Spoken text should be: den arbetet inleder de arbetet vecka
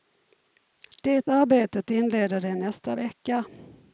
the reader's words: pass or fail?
fail